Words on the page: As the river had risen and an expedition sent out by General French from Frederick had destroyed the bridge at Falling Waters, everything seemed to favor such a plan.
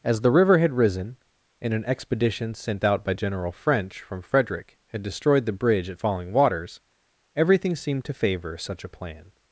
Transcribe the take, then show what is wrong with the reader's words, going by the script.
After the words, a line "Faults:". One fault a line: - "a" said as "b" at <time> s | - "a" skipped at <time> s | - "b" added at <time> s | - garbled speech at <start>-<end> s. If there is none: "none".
As the river had risen and an expedition sent out by General French from Frederick had destroyed the bridge at Falling Waters, everything seemed to favor such a plan.
Faults:
none